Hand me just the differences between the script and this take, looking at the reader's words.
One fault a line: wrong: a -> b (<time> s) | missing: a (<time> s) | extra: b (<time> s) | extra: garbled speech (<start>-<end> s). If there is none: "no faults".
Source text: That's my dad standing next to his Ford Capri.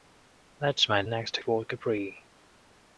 missing: dad standing (1.0 s)
missing: his (1.4 s)